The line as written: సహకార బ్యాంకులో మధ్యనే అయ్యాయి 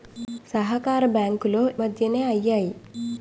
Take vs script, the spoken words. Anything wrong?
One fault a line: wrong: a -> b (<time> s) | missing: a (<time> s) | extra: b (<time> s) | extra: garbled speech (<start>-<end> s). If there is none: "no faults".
no faults